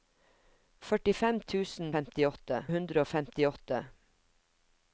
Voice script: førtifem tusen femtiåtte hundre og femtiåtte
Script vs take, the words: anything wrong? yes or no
no